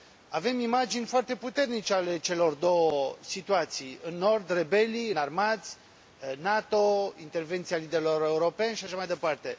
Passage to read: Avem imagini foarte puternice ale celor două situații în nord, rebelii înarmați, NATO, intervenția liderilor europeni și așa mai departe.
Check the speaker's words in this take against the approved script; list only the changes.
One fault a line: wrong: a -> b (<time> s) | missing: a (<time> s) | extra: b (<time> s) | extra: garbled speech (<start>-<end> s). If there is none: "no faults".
no faults